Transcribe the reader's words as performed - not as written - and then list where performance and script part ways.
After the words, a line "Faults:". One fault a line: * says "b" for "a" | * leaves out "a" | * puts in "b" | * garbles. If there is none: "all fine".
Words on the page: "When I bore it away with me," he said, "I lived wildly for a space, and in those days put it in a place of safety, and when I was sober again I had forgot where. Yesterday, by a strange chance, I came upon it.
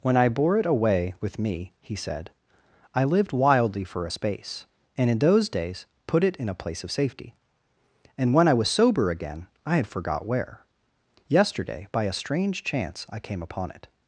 "When I bore it away with me," he said, "I lived wildly for a space, and in those days put it in a place of safety, and when I was sober again I had forgot where. Yesterday, by a strange chance, I came upon it.
Faults:
all fine